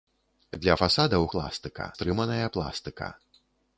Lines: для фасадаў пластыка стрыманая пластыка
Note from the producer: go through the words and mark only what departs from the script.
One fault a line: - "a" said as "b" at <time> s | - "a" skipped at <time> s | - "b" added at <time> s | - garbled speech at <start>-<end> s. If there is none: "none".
none